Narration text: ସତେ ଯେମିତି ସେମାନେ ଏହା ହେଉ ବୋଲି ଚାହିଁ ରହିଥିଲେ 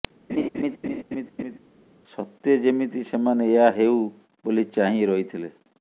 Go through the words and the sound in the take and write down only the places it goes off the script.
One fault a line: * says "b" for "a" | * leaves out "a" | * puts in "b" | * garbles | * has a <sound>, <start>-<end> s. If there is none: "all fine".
* has a laugh, 0.3-1.6 s